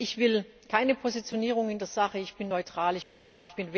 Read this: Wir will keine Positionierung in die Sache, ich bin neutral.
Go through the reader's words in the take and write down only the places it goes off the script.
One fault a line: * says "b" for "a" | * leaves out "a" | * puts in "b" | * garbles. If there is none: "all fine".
* says "Ich" for "Wir"
* says "der" for "die"